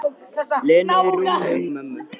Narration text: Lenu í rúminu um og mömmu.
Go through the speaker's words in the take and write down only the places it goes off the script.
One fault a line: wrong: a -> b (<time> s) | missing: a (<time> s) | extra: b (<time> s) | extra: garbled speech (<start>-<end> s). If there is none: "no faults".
no faults